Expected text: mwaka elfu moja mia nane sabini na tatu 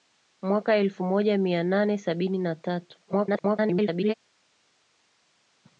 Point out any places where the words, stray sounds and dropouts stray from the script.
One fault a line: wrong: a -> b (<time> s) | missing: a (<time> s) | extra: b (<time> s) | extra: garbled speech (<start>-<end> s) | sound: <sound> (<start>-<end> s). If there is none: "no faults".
extra: garbled speech (3.1-4.1 s)